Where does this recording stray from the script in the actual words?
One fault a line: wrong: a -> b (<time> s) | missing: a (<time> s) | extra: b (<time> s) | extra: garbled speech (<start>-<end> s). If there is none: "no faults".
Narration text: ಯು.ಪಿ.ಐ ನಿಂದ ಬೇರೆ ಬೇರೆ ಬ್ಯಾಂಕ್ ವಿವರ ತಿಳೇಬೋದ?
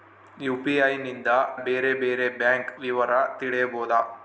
no faults